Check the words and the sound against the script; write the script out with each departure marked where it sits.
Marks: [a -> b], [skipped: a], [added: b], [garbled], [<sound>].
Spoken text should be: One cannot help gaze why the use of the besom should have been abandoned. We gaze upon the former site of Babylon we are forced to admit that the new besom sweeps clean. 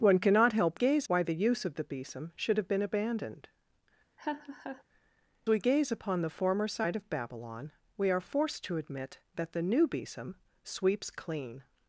One cannot help gaze why the use of the besom should have been abandoned. [laugh] We gaze upon the former site of Babylon we are forced to admit that the new besom sweeps clean.